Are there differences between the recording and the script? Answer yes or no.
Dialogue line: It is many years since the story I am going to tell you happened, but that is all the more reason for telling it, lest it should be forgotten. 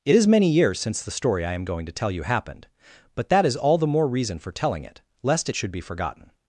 no